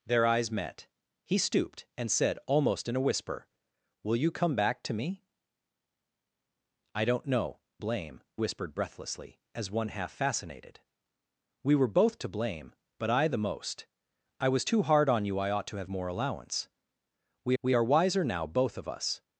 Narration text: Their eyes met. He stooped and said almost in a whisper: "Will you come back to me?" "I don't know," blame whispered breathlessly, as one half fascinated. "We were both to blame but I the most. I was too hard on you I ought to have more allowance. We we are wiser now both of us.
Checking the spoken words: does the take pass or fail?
pass